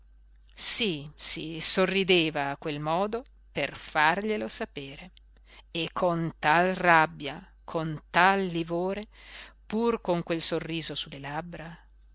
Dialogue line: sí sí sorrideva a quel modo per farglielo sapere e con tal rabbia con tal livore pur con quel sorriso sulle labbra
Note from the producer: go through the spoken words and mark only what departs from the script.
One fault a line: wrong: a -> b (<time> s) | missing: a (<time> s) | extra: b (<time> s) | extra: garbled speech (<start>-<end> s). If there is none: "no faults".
no faults